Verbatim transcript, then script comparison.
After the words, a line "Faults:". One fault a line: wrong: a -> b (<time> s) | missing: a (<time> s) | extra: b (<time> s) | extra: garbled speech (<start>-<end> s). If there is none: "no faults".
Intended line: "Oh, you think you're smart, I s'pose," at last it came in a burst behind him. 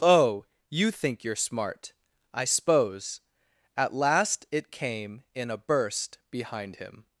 "Oh, you think you're smart, I s'pose," at last it came in a burst behind him.
Faults:
no faults